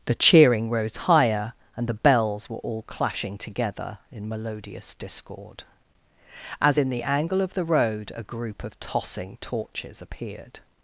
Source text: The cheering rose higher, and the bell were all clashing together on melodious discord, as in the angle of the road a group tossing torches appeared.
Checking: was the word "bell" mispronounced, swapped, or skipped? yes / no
yes